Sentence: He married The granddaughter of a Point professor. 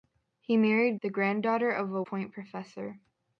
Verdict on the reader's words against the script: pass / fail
pass